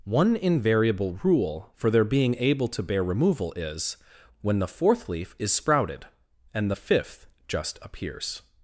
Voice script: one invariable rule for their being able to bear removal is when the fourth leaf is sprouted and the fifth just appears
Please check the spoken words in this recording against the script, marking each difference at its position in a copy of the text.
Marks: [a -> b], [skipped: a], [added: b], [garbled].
one invariable rule for their being able to bear removal is when the fourth leaf is sprouted and the fifth just appears